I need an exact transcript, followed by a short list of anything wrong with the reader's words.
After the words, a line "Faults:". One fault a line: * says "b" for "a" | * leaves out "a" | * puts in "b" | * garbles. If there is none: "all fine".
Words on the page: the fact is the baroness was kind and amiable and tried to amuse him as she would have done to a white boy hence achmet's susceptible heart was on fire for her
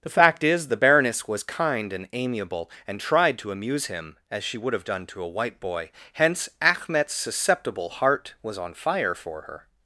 the fact is the baroness was kind and amiable and tried to amuse him as she would have done to a white boy hence achmet's susceptible heart was on fire for her
Faults:
all fine